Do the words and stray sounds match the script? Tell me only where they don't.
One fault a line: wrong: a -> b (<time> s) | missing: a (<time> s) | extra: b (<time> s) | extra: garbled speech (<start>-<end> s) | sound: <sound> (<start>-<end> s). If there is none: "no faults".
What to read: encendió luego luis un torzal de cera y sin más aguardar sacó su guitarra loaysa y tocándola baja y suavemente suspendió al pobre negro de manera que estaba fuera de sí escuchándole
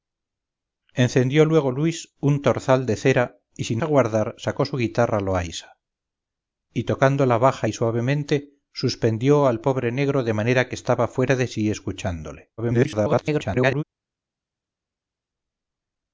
missing: más (3.8 s)
extra: garbled speech (12.6-13.8 s)